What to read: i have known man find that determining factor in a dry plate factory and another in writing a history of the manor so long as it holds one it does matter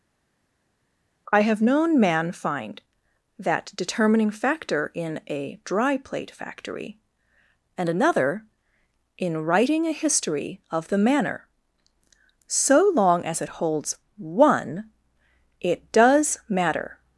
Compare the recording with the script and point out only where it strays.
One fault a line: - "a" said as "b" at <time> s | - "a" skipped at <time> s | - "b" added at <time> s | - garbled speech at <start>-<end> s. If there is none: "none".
none